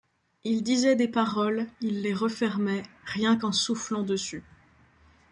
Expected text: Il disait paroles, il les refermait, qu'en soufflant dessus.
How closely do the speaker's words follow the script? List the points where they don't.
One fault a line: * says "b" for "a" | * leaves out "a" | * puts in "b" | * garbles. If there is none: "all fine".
* puts in "des"
* puts in "rien"